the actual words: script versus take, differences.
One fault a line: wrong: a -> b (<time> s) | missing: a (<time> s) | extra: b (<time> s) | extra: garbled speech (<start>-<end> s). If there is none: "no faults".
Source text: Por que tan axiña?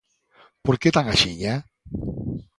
no faults